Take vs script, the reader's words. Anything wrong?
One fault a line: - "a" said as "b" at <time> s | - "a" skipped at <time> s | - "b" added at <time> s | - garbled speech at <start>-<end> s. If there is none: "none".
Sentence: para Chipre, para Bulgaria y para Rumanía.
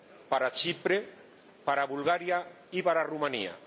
none